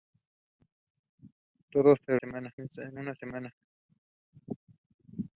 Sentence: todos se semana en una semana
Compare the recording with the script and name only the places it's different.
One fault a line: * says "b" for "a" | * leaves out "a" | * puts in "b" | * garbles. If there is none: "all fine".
all fine